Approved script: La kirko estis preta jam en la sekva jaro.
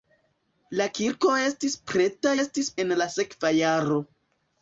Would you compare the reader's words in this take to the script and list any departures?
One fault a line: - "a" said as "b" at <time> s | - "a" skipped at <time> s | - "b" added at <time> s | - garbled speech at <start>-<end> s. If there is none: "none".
- "jam" said as "estis" at 2.4 s